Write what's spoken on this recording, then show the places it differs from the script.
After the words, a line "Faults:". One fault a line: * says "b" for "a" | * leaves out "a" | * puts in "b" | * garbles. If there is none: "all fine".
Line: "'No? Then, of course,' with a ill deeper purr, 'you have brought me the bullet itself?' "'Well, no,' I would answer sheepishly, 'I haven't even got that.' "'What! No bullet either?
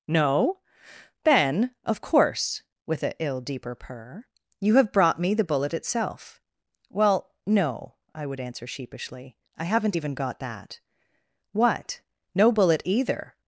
"'No? Then, of course,' with a ill deeper purr, 'you have brought me the bullet itself?' "'Well, no,' I would answer sheepishly, 'I haven't even got that.' "'What! No bullet either?
Faults:
all fine